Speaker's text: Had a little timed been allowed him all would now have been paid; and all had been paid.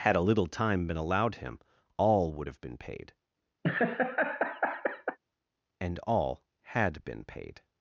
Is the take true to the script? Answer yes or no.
no